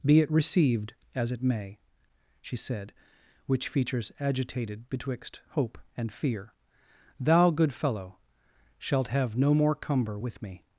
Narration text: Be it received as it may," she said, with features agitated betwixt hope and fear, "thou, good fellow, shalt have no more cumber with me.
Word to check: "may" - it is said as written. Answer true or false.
true